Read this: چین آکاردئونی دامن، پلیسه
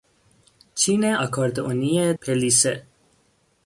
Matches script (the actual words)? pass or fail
fail